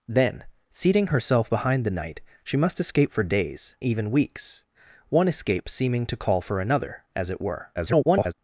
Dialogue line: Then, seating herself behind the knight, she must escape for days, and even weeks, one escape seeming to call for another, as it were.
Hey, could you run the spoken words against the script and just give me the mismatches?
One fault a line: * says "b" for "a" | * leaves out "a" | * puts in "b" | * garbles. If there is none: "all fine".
* leaves out "and"
* garbles